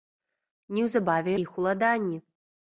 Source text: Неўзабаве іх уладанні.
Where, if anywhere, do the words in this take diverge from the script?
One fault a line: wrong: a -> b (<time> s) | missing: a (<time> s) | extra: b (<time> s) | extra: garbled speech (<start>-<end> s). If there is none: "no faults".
no faults